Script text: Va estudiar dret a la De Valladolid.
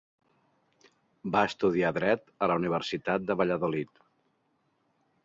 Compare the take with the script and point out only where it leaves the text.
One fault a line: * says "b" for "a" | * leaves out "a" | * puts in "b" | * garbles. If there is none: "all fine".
* puts in "Universitat"